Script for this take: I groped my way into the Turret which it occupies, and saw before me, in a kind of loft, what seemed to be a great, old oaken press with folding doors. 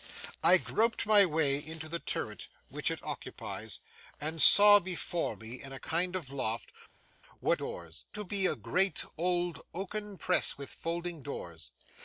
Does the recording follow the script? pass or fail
fail